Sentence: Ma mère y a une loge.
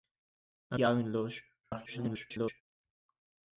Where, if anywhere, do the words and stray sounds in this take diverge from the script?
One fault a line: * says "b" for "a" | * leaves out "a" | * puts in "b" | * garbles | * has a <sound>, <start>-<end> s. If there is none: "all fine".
* leaves out "mère"
* garbles